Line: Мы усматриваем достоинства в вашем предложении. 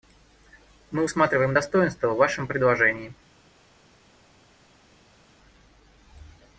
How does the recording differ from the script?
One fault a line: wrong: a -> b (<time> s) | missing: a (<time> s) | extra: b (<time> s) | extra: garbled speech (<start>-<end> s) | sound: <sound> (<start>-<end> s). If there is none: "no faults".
no faults